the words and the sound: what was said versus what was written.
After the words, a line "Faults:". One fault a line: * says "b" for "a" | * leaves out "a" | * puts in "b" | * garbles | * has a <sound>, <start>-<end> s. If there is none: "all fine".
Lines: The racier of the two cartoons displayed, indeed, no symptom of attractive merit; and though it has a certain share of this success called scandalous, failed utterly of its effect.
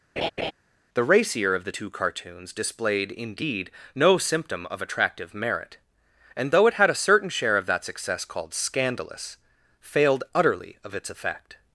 The racier of the two cartoons displayed, indeed, no symptom of attractive merit; and though it had a certain share of that success called scandalous, failed utterly of its effect.
Faults:
* has a laugh, 0.2-0.5 s
* says "had" for "has"
* says "that" for "this"